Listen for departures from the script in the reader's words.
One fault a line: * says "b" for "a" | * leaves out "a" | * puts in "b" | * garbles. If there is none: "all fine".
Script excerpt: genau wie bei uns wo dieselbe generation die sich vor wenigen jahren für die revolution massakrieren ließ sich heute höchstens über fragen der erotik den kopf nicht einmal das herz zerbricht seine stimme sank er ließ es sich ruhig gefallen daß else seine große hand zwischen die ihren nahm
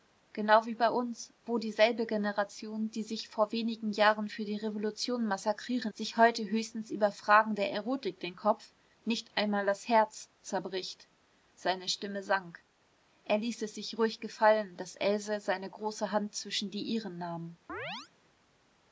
* leaves out "ließ"